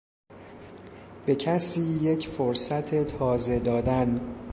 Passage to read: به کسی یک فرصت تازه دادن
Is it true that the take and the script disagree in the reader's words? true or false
false